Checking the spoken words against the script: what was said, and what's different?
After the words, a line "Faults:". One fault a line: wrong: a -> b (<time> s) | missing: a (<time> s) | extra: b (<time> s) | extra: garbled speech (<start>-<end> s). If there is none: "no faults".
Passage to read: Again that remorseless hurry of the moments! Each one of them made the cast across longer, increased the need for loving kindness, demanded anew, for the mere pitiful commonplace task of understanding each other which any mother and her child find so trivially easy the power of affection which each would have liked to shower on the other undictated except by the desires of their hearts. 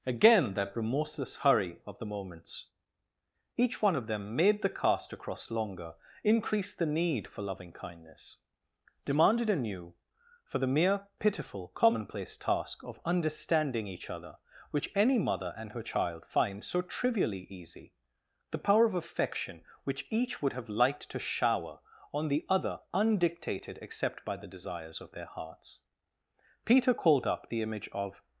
Again that remorseless hurry of the moments! Each one of them made the cast across longer, increased the need for loving kindness, demanded anew, for the mere pitiful commonplace task of understanding each other which any mother and her child find so trivially easy the power of affection which each would have liked to shower on the other undictated except by the desires of their hearts. Peter called up the image of
Faults:
extra: Peter called up the image of (26.6 s)